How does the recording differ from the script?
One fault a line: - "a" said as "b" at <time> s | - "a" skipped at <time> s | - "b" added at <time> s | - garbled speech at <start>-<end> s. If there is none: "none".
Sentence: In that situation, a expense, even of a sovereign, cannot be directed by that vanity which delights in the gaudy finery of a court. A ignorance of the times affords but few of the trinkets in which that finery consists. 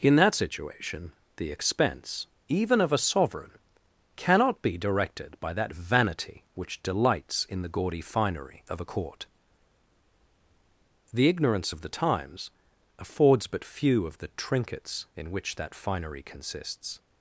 - "a" said as "the" at 1.4 s
- "A" said as "The" at 11.1 s